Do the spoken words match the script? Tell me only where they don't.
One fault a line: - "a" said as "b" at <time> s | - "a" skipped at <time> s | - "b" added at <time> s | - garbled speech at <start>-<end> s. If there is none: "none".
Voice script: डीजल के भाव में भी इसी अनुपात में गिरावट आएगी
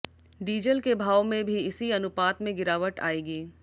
none